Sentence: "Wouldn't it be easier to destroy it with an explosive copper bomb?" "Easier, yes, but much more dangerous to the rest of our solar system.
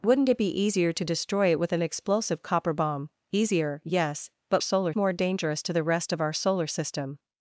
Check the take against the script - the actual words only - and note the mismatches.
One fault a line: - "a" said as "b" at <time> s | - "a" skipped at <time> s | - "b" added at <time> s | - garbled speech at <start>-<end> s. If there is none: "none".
- "much" said as "solar" at 4.6 s